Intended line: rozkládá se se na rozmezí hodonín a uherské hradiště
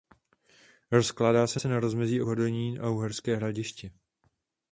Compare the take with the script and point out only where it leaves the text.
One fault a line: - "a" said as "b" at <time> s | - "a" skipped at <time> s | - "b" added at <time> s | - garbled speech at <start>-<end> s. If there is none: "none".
none